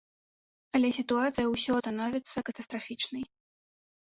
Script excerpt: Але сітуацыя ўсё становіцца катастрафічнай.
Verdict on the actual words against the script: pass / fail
pass